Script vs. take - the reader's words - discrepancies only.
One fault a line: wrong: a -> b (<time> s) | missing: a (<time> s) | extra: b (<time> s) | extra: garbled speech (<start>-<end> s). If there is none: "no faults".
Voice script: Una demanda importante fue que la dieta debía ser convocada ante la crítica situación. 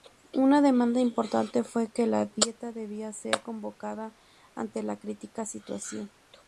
no faults